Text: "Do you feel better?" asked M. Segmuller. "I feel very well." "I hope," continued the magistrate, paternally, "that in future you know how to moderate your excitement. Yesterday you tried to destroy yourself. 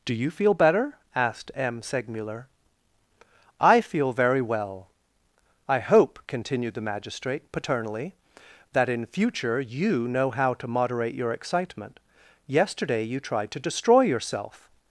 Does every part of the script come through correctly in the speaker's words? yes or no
yes